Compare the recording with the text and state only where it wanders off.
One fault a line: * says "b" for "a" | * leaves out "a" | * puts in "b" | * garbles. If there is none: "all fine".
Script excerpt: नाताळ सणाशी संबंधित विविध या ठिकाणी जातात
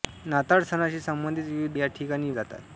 all fine